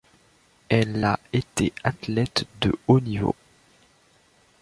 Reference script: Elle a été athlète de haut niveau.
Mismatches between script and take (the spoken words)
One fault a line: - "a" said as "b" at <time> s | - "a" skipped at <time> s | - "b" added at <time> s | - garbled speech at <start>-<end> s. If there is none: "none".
none